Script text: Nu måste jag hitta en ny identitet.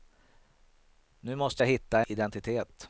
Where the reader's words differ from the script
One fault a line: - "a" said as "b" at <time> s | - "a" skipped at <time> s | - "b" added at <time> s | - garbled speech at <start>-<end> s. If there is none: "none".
- "en ny" skipped at 2.0 s